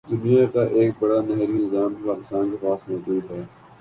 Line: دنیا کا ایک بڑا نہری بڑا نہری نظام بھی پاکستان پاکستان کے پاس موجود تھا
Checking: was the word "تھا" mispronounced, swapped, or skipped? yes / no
yes